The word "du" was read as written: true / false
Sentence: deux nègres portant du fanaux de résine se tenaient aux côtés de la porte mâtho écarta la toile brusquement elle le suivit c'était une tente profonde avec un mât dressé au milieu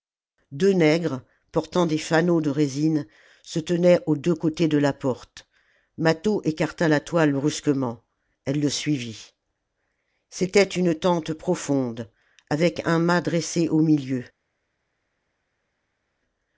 false